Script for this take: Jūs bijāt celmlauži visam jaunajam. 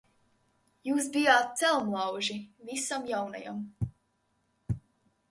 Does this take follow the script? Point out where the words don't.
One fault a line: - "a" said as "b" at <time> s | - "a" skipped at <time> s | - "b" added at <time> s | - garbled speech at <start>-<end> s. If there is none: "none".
none